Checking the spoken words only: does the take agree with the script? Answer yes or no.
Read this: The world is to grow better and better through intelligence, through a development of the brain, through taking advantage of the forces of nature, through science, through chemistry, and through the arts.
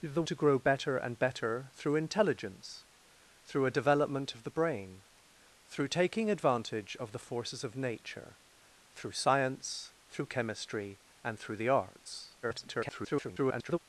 no